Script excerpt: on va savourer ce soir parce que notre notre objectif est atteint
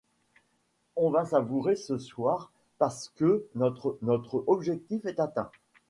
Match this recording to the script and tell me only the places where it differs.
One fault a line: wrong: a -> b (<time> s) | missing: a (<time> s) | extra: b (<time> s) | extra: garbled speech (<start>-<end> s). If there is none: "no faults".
no faults